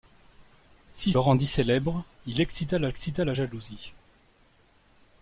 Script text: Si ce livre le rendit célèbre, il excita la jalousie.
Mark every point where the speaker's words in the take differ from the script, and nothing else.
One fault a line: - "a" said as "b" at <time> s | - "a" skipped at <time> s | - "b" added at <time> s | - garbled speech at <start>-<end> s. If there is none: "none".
- "ce livre le" skipped at 1.1 s
- "excita la" added at 2.9 s